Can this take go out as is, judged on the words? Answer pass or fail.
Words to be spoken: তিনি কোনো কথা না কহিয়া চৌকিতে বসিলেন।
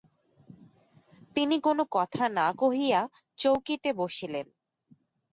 pass